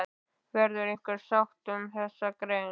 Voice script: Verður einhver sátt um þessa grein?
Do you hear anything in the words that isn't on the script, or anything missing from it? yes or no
no